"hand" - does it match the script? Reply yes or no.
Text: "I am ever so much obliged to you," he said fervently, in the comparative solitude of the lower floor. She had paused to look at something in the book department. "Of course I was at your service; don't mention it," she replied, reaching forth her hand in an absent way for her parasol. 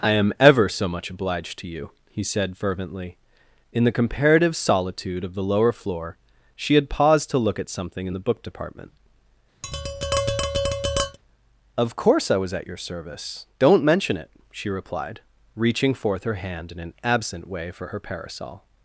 yes